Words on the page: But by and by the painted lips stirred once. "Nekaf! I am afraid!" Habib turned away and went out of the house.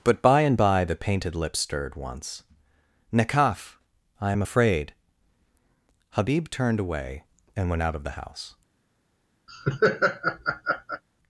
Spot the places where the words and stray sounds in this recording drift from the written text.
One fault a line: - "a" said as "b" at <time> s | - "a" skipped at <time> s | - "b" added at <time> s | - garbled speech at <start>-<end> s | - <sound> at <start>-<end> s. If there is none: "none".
- laugh at 9.5-11.0 s